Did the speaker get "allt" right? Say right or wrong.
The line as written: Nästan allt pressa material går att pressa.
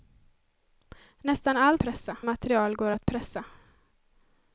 right